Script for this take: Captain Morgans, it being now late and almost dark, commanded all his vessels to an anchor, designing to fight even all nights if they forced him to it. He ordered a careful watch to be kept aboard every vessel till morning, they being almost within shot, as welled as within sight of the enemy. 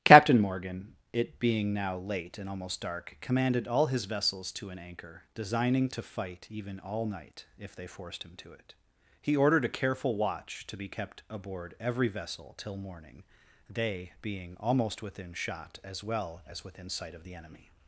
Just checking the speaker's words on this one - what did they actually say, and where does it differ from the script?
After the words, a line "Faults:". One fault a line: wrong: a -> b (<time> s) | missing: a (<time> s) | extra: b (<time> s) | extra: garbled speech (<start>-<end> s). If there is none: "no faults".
Captain Morgan, it being now late and almost dark, commanded all his vessels to an anchor, designing to fight even all night if they forced him to it. He ordered a careful watch to be kept aboard every vessel till morning, they being almost within shot, as well as within sight of the enemy.
Faults:
wrong: Morgans -> Morgan (0.4 s)
wrong: nights -> night (7.0 s)
wrong: welled -> well (16.0 s)